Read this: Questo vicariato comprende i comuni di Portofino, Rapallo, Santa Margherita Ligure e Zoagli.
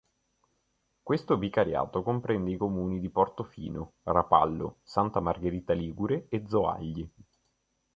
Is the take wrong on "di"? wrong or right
right